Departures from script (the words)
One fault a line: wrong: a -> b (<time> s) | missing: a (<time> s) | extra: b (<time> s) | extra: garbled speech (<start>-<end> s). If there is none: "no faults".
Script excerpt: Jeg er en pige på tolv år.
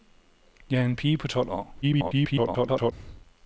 extra: garbled speech (1.8-2.9 s)